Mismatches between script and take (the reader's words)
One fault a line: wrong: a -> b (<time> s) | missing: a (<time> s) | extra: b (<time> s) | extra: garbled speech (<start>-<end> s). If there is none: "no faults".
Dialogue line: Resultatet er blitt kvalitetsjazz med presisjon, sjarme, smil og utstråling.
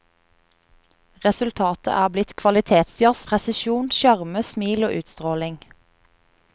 missing: med (3.3 s)